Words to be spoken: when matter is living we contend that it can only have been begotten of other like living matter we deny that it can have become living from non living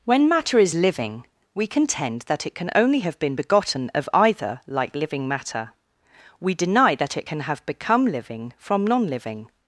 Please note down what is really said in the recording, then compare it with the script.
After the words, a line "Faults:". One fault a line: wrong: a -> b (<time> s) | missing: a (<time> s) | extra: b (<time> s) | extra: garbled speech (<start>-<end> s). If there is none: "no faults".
when matter is living we contend that it can only have been begotten of either like living matter we deny that it can have become living from non living
Faults:
wrong: other -> either (4.1 s)